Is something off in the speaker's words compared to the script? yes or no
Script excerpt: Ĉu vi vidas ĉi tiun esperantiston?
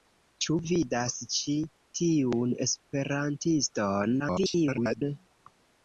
yes